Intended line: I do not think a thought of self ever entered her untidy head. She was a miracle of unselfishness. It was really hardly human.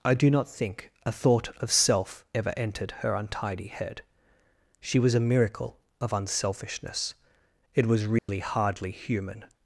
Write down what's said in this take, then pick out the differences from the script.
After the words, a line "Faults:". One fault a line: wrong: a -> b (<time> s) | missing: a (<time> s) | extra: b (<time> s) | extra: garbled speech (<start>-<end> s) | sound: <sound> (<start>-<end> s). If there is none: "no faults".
I do not think a thought of self ever entered her untidy head. She was a miracle of unselfishness. It was really hardly human.
Faults:
sound: dropout (8.2-8.3 s)